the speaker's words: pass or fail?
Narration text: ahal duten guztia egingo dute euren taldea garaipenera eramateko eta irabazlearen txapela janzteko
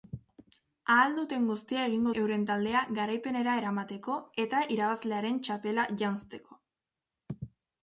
fail